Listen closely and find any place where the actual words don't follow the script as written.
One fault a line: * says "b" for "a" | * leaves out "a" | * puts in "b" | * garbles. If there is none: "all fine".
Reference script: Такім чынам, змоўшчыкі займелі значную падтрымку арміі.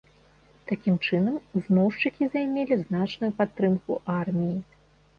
all fine